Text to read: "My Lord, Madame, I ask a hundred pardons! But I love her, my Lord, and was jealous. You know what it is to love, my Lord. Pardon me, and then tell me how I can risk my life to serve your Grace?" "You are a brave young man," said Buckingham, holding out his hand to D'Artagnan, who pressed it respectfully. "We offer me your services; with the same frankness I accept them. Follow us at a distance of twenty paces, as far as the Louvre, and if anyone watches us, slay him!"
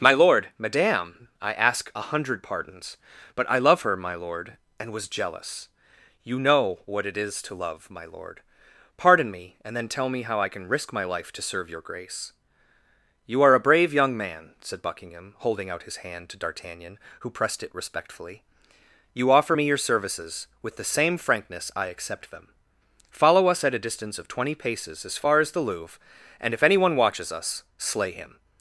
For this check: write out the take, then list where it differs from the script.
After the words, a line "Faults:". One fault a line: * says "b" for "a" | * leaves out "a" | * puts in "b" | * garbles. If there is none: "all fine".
"My Lord, Madame, I ask a hundred pardons! But I love her, my Lord, and was jealous. You know what it is to love, my Lord. Pardon me, and then tell me how I can risk my life to serve your Grace?" "You are a brave young man," said Buckingham, holding out his hand to D'Artagnan, who pressed it respectfully. "You offer me your services; with the same frankness I accept them. Follow us at a distance of twenty paces, as far as the Louvre, and if anyone watches us, slay him!"
Faults:
* says "You" for "We"